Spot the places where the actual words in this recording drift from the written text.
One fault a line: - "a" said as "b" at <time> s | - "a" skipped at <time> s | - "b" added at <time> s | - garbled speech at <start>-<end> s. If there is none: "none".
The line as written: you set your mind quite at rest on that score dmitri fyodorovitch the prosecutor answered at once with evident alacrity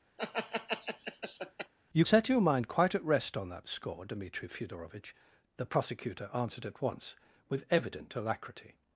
none